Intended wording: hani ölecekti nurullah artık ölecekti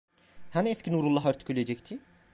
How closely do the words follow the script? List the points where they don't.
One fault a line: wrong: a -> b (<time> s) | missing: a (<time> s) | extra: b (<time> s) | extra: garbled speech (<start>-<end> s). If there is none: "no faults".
wrong: ölecekti -> eski (0.7 s)